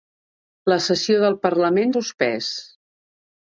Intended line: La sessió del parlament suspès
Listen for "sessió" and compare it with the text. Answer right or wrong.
right